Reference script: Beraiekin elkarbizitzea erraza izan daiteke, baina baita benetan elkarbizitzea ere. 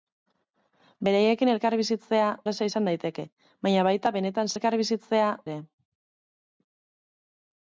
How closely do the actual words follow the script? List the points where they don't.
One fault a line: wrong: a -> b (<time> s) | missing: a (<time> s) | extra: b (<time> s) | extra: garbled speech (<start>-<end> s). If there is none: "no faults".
no faults